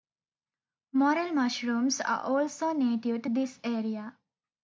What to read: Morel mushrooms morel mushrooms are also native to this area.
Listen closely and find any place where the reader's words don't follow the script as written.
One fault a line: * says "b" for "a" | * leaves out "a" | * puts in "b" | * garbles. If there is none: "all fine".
* leaves out "morel mushrooms"